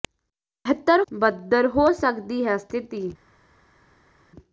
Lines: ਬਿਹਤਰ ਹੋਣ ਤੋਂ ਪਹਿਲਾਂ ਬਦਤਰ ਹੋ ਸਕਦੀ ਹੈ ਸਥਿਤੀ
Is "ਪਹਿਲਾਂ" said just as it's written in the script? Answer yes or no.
no